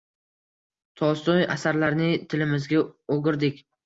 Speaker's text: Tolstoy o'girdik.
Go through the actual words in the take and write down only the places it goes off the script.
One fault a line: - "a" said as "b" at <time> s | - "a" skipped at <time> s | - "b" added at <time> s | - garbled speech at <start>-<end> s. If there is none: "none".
- "asarlarini tilimizga" added at 1.5 s